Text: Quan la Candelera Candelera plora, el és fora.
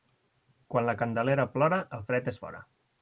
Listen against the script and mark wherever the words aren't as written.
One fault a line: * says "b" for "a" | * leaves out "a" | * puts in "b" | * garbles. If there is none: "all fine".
* leaves out "Candelera"
* puts in "fred"